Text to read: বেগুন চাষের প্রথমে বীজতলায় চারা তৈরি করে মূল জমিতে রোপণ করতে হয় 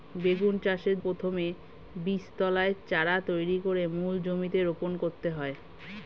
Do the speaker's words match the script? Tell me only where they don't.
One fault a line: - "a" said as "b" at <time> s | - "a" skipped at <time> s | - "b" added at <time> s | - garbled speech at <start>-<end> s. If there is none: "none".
none